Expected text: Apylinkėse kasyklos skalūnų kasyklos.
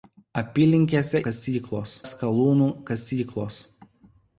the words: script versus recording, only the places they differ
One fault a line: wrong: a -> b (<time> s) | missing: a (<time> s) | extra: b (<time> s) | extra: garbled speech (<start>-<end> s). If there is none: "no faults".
no faults